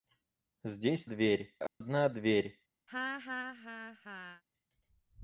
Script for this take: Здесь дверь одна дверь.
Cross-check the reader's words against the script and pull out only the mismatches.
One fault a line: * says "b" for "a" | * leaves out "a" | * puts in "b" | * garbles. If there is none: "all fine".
all fine